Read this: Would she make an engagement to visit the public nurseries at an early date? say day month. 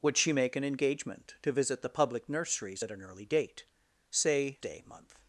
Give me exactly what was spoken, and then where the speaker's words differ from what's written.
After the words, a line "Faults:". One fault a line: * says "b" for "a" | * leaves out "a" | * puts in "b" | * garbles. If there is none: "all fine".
Would she make an engagement to visit the public nurseries at an early date? say day month.
Faults:
all fine